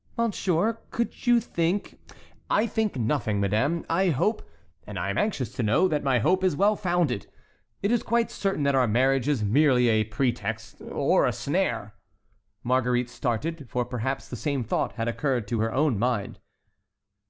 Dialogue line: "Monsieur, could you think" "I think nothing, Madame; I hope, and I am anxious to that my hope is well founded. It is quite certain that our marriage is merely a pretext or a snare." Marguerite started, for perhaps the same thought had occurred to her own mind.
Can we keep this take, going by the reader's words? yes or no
no